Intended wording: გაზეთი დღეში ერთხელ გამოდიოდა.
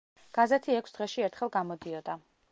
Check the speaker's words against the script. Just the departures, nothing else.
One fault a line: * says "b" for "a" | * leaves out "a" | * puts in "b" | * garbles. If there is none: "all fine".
* puts in "ექვს"